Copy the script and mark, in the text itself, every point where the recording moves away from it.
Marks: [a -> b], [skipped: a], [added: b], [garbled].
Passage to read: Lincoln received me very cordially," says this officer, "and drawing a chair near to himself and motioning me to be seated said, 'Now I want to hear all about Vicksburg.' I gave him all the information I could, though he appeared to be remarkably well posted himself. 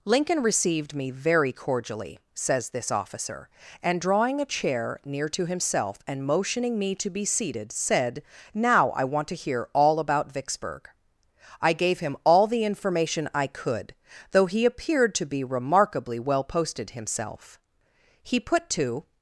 Lincoln received me very cordially," says this officer, "and drawing a chair near to himself and motioning me to be seated said, 'Now I want to hear all about Vicksburg.' I gave him all the information I could, though he appeared to be remarkably well posted himself. [added: He put to]